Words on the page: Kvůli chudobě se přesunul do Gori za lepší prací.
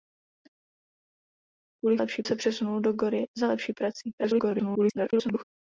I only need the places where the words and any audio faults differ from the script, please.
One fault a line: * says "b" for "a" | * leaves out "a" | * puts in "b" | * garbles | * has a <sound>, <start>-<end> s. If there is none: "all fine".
* says "lepší" for "chudobě"
* garbles